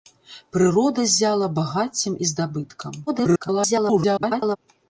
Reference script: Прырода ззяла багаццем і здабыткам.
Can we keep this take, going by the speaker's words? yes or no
no